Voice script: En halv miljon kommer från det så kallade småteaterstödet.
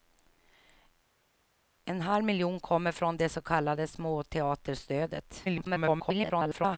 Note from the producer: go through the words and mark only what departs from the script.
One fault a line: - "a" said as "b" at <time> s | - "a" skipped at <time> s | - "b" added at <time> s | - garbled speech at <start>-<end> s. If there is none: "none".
- garbled speech at 5.4-6.8 s